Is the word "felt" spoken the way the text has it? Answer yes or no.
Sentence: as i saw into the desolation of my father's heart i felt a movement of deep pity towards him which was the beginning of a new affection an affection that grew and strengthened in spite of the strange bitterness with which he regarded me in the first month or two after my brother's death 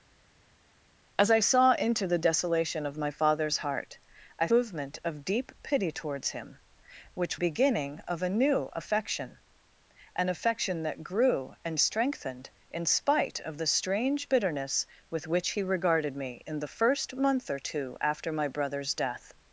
no